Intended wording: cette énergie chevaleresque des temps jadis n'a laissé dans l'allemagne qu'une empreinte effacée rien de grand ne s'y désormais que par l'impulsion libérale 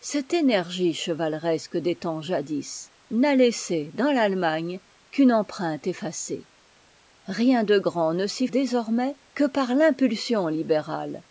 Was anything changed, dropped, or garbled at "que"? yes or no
no